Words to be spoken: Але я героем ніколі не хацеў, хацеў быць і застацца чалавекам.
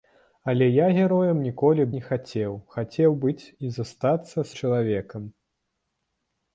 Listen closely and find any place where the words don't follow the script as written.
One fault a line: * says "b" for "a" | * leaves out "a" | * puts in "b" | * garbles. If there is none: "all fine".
all fine